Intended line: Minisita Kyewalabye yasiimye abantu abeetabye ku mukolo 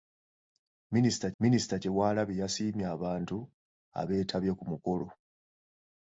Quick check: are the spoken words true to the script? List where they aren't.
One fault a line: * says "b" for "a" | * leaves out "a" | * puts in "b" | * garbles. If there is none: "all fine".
* puts in "minisita"